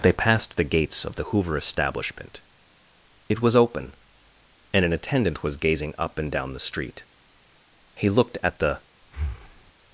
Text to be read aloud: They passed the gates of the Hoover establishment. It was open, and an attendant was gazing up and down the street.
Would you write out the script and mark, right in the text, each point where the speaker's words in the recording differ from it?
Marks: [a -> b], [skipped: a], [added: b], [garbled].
They passed the gates of the Hoover establishment. It was open, and an attendant was gazing up and down the street. [added: He looked at the]